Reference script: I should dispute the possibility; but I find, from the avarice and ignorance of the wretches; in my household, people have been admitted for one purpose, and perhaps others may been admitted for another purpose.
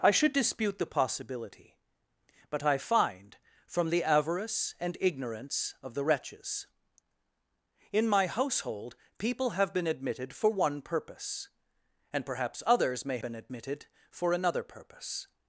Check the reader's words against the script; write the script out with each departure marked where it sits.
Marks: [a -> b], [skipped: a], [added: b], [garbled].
I should dispute the possibility; but I find, from the avarice and ignorance of the wretches; in my household, people have been admitted for one purpose, and perhaps others may been admitted for another purpose.